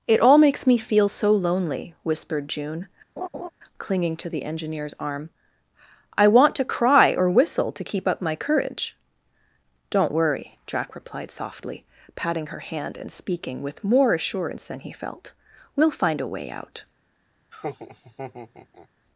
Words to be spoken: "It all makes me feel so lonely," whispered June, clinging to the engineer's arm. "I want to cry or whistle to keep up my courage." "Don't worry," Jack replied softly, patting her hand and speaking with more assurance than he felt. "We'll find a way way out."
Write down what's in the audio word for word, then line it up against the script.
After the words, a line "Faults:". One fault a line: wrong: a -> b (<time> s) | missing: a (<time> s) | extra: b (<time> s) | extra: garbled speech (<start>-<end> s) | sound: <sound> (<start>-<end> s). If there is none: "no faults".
"It all makes me feel so lonely," whispered June, clinging to the engineer's arm. "I want to cry or whistle to keep up my courage." "Don't worry," Jack replied softly, patting her hand and speaking with more assurance than he felt. "We'll find a way out."
Faults:
sound: laugh (3.2-3.5 s)
missing: way (16.5 s)
sound: laugh (17.5-18.9 s)